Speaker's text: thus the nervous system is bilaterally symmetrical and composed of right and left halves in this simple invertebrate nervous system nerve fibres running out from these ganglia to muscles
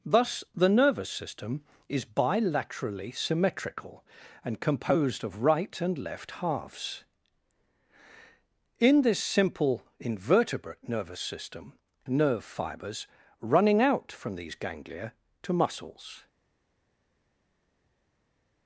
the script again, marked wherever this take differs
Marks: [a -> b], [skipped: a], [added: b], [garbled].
thus the nervous system is bilaterally symmetrical and composed of right and left halves in this simple invertebrate nervous system nerve fibres running out from these ganglia to muscles